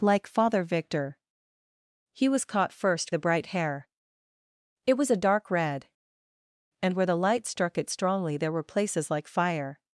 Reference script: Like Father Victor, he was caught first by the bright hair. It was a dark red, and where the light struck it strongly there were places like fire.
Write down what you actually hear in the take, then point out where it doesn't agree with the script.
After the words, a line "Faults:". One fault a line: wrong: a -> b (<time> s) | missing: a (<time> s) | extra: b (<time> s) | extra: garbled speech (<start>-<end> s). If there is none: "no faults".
Like Father Victor, he was caught first the bright hair. It was a dark red, and where the light struck it strongly there were places like fire.
Faults:
missing: by (3.1 s)